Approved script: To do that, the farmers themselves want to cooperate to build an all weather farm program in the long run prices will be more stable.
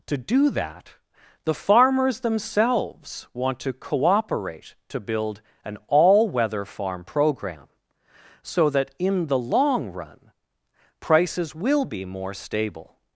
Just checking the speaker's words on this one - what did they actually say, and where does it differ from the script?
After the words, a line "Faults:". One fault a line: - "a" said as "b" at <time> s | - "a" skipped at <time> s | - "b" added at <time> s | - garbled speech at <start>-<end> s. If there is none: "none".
To do that, the farmers themselves want to cooperate to build an all weather farm program so that in the long run prices will be more stable.
Faults:
- "so that" added at 8.4 s